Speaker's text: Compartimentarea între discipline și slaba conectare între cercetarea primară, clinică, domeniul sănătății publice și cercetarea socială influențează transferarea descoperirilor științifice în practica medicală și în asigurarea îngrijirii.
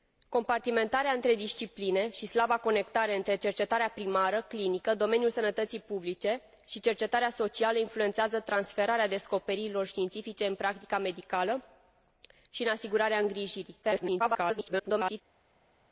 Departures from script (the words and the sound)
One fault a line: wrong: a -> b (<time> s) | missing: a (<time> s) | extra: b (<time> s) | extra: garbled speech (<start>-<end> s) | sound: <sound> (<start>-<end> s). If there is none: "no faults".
extra: garbled speech (13.8-15.2 s)